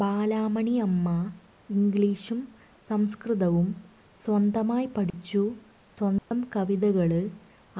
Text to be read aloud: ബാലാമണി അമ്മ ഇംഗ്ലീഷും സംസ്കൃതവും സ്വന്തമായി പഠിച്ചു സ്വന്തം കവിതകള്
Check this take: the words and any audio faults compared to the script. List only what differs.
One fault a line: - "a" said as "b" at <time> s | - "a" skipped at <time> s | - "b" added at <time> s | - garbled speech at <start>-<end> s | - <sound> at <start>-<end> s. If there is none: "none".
- dropout at 5.1-5.1 s
- dropout at 6.2-6.3 s